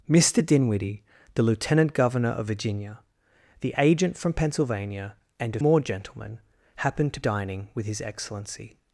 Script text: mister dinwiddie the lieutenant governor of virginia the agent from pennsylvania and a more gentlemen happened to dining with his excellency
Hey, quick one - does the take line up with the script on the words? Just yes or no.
yes